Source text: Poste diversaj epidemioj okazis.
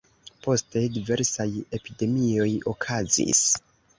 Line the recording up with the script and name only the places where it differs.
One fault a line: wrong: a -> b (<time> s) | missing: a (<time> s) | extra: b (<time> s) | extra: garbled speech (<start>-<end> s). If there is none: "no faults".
no faults